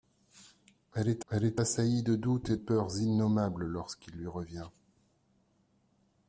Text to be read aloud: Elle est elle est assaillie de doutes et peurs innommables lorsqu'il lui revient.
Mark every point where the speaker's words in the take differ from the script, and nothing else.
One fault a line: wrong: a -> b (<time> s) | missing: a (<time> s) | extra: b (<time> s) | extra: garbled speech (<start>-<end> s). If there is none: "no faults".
no faults